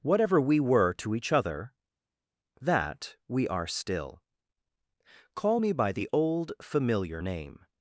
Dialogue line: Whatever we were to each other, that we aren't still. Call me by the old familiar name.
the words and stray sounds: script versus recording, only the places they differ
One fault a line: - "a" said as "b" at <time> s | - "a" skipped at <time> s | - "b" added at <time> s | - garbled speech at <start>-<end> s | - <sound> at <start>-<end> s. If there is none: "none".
- "aren't" said as "are" at 3.5 s